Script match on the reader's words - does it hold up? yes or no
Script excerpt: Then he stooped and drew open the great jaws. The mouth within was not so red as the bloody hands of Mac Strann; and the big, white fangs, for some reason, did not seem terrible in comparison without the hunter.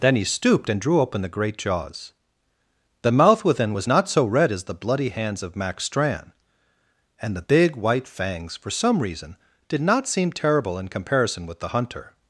no